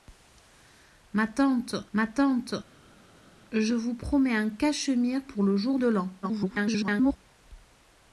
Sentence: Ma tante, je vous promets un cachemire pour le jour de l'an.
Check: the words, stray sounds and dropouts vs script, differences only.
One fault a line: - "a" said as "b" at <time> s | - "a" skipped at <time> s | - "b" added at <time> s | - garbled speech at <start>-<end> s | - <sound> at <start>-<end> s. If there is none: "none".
- "ma tante" added at 1.9 s
- garbled speech at 6.2-7.2 s